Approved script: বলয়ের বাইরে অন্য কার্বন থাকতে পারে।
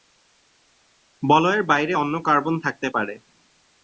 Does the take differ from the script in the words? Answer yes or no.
no